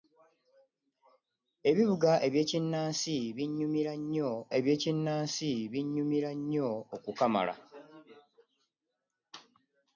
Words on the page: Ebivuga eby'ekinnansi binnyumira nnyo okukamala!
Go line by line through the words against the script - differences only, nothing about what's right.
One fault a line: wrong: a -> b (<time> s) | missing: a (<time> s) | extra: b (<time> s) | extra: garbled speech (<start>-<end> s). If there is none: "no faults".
extra: eby'ekinnansi binnyumira nnyo (4.6 s)